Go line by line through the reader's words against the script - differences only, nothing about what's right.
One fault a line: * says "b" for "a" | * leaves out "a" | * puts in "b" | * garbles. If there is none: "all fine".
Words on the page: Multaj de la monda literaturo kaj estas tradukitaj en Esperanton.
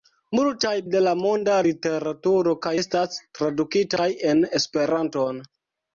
all fine